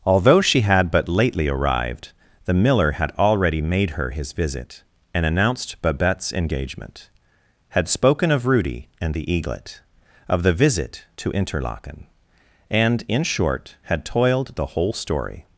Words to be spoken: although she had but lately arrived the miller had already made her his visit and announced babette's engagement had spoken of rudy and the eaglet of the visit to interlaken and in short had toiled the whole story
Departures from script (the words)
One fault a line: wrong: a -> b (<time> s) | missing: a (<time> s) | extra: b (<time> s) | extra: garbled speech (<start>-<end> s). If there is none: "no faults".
no faults